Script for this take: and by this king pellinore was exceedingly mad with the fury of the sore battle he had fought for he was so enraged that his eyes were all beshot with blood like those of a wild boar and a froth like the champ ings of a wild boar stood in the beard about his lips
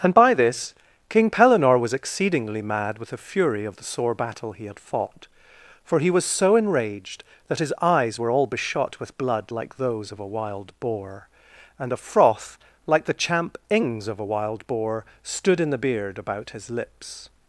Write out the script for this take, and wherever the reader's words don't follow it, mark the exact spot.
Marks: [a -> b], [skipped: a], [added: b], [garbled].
and by this king pellinore was exceedingly mad with the fury of the sore battle he had fought for he was so enraged that his eyes were all beshot with blood like those of a wild boar and a froth like the champ ings of a wild boar stood in the beard about his lips